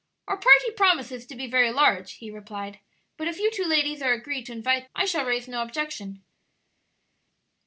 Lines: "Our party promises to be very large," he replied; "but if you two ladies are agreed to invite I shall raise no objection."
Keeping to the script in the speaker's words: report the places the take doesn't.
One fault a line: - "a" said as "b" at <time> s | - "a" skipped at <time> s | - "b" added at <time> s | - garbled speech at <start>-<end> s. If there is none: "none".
none